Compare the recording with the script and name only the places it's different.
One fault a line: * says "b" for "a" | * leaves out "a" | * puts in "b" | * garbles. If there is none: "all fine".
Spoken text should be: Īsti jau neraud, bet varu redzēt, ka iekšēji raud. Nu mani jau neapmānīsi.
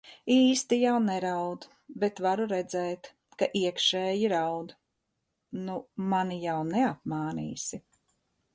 all fine